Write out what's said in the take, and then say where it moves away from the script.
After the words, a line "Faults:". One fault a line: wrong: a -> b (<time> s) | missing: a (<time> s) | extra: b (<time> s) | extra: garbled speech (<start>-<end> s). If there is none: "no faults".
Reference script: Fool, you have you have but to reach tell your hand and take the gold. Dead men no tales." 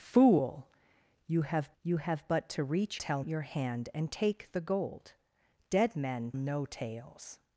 Fool, you have you have but to reach tell your hand and take the gold. Dead men no tales."
Faults:
no faults